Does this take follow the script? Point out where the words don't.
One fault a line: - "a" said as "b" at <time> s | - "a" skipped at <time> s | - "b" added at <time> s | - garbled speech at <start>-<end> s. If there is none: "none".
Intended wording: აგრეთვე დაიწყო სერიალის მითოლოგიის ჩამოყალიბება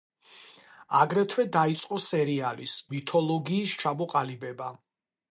none